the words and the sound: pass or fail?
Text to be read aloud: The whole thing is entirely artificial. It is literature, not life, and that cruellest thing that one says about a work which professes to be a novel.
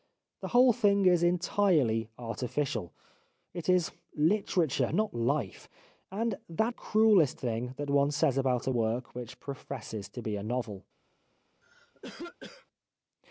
fail